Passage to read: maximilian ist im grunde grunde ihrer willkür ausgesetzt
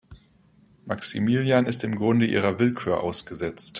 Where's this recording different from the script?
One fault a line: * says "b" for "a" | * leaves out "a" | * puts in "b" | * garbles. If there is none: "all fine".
* leaves out "grunde"